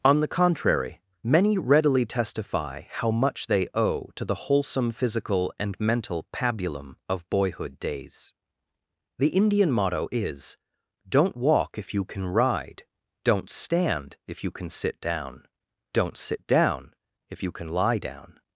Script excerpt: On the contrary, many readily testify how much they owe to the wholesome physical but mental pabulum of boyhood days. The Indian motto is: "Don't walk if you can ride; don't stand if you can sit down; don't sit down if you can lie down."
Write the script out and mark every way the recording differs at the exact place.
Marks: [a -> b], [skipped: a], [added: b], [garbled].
On the contrary, many readily testify how much they owe to the wholesome physical [but -> and] mental pabulum of boyhood days. The Indian motto is: "Don't walk if you can ride; don't stand if you can sit down; don't sit down if you can lie down."